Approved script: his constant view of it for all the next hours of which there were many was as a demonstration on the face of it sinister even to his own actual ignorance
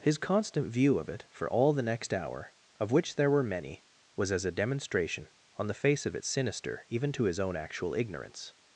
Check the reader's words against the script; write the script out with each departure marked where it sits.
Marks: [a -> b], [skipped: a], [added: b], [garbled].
his constant view of it for all the next [hours -> hour] of which there were many was as a demonstration on the face of it sinister even to his own actual ignorance